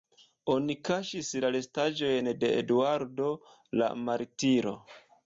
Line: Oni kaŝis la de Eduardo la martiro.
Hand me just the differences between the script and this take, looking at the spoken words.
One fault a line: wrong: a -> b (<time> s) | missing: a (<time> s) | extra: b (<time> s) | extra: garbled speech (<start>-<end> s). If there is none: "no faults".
extra: restaĵojn (1.6 s)